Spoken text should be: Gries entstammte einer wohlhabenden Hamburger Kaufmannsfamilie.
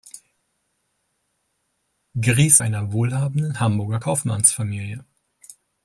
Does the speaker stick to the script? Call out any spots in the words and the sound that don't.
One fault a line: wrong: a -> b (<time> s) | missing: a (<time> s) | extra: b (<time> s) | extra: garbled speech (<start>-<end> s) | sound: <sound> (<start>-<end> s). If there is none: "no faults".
missing: entstammte (2.6 s)